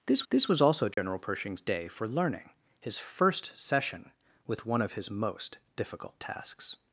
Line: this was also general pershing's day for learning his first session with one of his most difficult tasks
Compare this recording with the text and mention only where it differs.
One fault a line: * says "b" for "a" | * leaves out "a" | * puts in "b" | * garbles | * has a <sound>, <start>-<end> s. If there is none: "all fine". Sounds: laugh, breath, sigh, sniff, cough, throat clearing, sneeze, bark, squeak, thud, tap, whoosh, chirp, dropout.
* puts in "this"
* has a dropout, 0.9-1.0 s